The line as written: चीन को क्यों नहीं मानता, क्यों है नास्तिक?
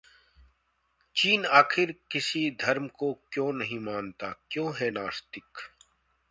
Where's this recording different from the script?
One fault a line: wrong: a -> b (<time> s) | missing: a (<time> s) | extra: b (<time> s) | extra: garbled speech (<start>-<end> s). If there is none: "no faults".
extra: आखिर किसी धर्म (1.4 s)